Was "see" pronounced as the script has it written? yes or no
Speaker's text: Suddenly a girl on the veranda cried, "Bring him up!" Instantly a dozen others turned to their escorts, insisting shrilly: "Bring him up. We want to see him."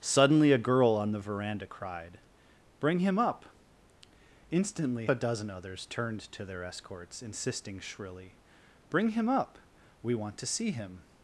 yes